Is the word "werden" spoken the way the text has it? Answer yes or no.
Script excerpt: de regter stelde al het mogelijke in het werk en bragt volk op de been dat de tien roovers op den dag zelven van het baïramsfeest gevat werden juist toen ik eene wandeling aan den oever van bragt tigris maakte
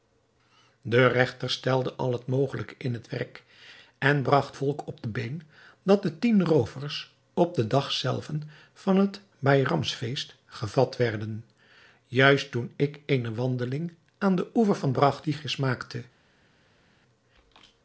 yes